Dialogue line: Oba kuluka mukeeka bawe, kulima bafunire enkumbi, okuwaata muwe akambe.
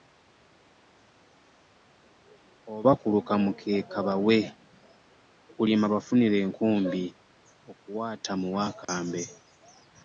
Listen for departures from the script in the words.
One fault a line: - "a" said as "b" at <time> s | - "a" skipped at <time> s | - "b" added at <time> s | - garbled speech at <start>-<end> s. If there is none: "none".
none